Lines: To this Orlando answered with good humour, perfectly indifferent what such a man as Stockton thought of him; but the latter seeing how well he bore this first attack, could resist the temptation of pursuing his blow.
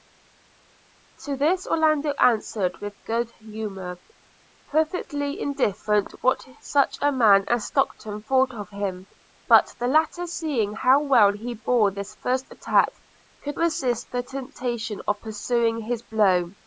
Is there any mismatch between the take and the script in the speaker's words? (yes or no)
no